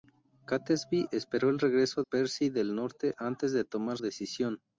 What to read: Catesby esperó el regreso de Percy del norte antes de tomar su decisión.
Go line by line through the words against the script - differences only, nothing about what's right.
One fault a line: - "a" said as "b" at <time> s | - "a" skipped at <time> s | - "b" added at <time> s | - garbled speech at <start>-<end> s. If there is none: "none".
- "de" skipped at 2.0 s
- "su" skipped at 4.0 s